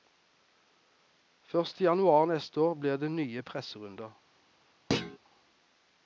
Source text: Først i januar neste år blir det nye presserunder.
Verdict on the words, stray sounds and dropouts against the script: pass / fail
fail